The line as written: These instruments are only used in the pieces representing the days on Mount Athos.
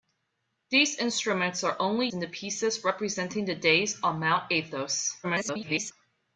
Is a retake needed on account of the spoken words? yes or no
yes